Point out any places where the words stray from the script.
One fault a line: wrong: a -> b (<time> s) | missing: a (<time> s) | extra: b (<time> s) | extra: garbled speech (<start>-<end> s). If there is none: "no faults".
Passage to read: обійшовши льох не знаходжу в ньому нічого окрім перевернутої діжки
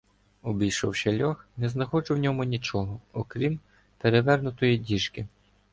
no faults